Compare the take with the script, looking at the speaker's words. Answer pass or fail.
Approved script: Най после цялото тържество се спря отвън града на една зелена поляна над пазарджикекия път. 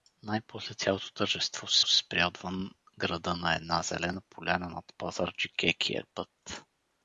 fail